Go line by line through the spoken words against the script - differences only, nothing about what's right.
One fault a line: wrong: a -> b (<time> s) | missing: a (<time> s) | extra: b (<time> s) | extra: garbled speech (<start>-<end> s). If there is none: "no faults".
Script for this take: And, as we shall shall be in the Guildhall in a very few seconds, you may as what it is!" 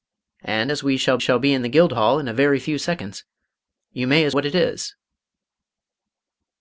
no faults